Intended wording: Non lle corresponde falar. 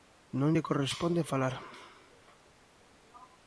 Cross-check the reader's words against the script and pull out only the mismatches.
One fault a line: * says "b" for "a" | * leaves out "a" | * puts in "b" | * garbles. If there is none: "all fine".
all fine